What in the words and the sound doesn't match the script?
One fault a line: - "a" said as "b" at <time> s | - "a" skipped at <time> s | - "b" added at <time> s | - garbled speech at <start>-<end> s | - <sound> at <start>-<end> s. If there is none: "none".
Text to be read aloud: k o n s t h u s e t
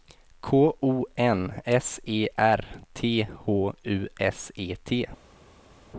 - "e r" added at 2.1 s